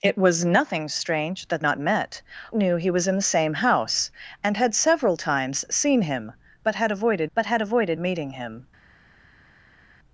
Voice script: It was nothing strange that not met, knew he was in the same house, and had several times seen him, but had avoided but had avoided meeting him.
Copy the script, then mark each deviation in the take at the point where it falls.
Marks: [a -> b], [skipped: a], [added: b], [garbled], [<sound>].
It was nothing strange that not met, knew he was in the same house, and had several times seen him, but had avoided but had avoided meeting him.